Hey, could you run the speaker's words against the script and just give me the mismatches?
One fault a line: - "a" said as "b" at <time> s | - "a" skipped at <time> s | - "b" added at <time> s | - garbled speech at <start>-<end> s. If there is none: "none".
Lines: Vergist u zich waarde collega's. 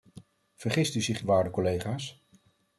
none